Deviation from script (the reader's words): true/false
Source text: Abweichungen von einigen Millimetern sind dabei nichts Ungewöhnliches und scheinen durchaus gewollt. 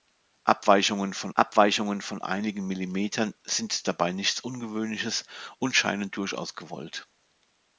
true